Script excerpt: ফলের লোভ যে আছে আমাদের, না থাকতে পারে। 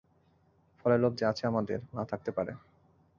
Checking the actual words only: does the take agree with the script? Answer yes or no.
yes